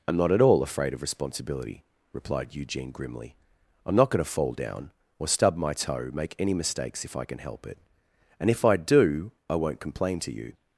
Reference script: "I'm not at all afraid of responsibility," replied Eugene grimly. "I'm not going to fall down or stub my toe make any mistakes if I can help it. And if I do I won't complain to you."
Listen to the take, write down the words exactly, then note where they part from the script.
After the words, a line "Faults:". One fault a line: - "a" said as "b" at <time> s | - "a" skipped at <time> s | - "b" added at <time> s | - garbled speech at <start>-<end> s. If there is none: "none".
"I'm not at all afraid of responsibility," replied Eugene grimly. "I'm not going to fall down or stub my toe make any mistakes if I can help it. And if I do I won't complain to you."
Faults:
none